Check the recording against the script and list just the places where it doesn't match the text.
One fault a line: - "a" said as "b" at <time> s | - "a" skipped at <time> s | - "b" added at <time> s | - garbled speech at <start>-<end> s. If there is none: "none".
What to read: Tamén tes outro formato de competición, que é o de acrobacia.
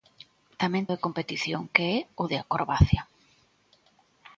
- "tes outro formato" skipped at 0.9 s